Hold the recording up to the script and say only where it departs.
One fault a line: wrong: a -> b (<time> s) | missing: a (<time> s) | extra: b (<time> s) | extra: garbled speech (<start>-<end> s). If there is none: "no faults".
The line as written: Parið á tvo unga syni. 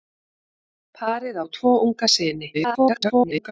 extra: garbled speech (2.5-3.5 s)